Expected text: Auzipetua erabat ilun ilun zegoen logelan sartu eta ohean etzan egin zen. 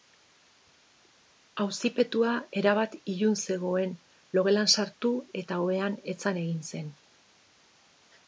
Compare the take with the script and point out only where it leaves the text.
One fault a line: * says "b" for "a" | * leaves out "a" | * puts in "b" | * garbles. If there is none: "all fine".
* leaves out "ilun"